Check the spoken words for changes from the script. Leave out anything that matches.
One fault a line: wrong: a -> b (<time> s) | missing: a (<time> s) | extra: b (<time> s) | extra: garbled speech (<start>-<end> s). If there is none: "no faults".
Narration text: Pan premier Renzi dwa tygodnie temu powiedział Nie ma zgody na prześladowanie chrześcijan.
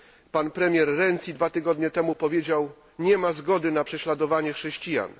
no faults